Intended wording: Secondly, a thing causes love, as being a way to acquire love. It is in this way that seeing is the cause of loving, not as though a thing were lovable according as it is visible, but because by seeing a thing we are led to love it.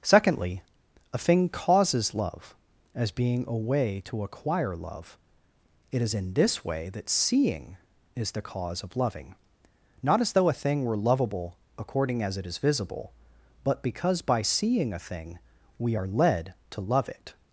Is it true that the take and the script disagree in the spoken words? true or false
false